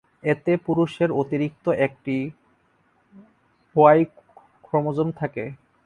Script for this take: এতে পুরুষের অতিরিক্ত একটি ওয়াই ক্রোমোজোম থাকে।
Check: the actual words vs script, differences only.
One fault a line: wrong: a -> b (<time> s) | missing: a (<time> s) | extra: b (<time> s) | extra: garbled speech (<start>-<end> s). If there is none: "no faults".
no faults